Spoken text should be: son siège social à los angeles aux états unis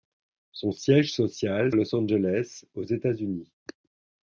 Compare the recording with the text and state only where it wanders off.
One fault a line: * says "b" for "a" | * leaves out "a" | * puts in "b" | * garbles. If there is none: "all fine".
all fine